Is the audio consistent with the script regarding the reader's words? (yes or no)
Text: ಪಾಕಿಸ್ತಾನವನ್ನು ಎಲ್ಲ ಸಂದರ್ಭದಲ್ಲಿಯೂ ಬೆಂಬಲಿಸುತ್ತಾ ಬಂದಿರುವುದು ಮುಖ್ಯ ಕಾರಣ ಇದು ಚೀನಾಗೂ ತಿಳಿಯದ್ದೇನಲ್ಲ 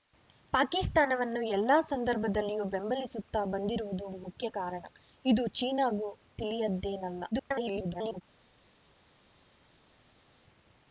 no